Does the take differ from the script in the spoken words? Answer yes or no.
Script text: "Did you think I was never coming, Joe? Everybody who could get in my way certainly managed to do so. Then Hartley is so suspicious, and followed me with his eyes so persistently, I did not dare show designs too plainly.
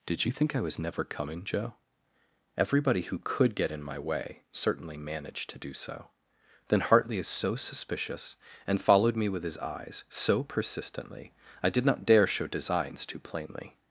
no